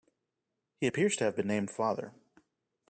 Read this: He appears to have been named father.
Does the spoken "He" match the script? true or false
true